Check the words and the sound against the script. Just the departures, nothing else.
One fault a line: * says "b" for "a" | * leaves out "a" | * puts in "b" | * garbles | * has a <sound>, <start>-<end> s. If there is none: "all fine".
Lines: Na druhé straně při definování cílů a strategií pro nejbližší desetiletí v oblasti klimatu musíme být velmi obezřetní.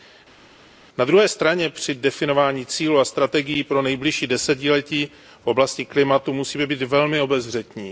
all fine